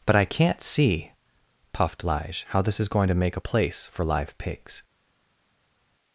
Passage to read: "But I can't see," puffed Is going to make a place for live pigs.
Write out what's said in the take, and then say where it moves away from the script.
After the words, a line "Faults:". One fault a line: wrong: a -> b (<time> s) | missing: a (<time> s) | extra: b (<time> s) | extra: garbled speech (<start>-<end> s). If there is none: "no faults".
"But I can't see," puffed Lige, "how this is going to make a place for live pigs.
Faults:
extra: Lige how this (2.0 s)